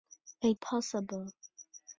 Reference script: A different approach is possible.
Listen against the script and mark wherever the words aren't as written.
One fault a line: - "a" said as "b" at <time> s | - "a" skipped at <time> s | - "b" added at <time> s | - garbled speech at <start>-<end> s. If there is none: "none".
- "different approach is" skipped at 0.6 s